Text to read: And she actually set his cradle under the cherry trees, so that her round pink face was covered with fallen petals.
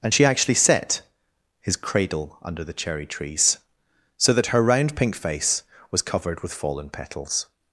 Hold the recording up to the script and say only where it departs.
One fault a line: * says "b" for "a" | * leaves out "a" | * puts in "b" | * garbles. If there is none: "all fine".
all fine